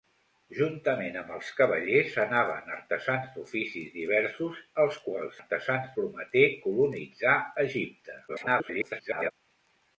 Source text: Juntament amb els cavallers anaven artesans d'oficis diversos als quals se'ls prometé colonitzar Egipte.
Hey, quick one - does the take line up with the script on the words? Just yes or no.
no